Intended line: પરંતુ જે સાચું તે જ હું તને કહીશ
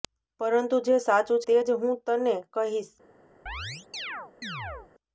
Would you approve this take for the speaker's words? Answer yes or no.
yes